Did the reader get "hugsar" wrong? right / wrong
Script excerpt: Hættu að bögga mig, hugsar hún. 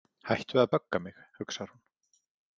right